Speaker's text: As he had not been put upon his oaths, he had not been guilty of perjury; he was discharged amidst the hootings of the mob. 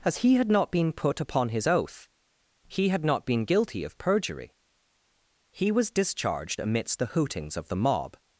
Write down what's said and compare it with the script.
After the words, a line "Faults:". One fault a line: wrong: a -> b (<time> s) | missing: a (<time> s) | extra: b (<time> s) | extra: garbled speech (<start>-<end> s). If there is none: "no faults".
As he had not been put upon his oath, he had not been guilty of perjury; he was discharged amidst the hootings of the mob.
Faults:
wrong: oaths -> oath (1.7 s)